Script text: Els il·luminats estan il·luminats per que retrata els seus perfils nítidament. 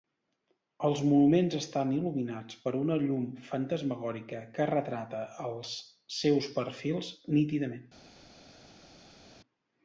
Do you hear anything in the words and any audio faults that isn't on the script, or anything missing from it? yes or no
yes